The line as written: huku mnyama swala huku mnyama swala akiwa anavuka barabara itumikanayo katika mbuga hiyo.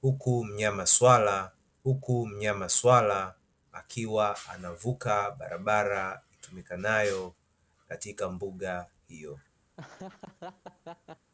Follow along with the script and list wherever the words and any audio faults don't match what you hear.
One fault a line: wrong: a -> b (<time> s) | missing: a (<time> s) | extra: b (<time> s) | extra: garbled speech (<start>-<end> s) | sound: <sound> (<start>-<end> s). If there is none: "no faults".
sound: laugh (9.8-11.3 s)